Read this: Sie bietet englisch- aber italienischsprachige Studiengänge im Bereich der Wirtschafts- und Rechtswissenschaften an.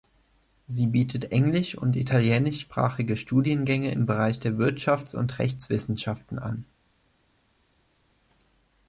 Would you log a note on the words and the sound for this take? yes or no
yes